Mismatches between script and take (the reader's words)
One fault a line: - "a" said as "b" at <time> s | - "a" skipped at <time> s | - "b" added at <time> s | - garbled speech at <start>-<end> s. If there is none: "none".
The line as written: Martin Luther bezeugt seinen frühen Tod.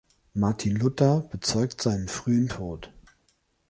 none